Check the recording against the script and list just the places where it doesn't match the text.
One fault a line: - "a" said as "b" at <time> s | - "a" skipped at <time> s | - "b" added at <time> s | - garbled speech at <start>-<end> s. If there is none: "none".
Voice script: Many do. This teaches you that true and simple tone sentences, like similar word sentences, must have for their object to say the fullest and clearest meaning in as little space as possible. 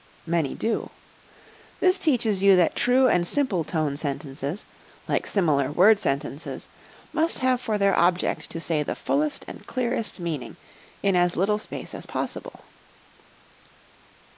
none